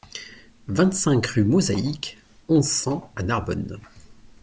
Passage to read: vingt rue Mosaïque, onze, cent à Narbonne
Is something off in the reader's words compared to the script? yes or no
yes